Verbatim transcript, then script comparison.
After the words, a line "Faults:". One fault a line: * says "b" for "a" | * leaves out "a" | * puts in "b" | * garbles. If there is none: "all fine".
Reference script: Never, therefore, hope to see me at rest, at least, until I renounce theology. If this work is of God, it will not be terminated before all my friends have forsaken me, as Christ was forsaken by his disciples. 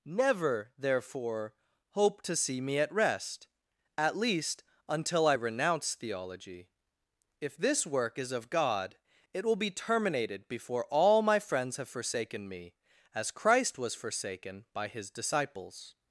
Never, therefore, hope to see me at rest, at least, until I renounce theology. If this work is of God, it will be terminated before all my friends have forsaken me, as Christ was forsaken by his disciples.
Faults:
* leaves out "not"